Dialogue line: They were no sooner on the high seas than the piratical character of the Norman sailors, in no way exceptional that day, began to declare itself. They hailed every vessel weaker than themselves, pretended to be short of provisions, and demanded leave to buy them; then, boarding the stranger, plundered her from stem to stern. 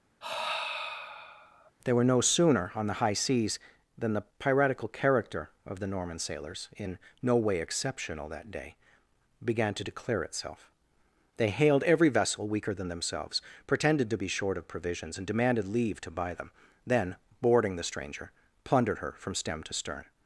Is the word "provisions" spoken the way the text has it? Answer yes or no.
yes